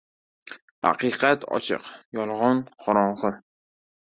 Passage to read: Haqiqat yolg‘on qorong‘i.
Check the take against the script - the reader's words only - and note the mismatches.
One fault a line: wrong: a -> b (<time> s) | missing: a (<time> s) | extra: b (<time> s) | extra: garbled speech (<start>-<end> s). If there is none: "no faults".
extra: ochiq (1.6 s)